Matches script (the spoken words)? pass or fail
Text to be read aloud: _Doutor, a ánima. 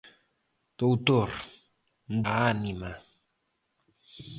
pass